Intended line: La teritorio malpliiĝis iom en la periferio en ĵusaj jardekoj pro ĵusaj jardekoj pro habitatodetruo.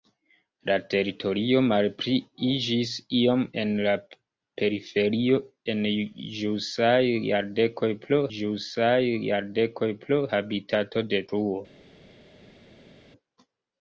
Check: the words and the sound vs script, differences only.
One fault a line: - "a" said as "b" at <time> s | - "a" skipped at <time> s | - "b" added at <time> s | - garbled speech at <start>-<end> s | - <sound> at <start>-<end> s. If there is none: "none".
none